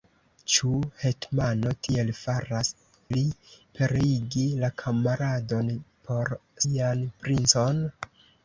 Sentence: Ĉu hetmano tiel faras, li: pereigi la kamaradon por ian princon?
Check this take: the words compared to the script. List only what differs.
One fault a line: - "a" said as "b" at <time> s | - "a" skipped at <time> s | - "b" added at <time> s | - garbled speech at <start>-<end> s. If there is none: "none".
none